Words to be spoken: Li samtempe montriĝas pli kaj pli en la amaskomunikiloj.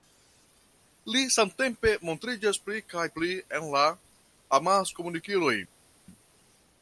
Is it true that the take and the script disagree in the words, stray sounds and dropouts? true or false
false